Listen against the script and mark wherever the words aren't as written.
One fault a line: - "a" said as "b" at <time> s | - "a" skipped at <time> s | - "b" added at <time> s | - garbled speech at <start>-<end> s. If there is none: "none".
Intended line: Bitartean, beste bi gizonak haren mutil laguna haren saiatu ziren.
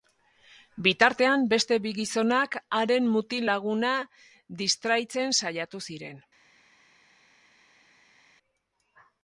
- "haren" said as "distraitzen" at 4.6 s